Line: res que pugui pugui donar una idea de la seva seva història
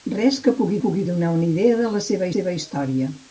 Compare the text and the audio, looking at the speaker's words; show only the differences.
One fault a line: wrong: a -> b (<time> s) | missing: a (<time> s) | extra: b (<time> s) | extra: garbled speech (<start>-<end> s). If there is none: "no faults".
no faults